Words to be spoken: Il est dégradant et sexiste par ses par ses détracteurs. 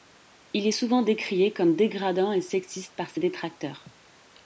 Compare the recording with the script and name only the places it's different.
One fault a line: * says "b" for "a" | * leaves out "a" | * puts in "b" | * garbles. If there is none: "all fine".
* puts in "souvent décrié comme"
* leaves out "par ses"